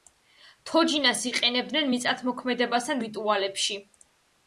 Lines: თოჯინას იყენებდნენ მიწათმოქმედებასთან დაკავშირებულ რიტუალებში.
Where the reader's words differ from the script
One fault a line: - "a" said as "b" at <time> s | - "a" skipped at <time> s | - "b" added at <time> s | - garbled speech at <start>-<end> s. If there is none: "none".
- "დაკავშირებულ" skipped at 3.0 s